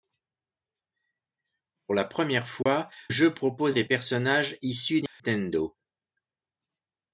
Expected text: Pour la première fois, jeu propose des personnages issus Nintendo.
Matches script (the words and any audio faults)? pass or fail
fail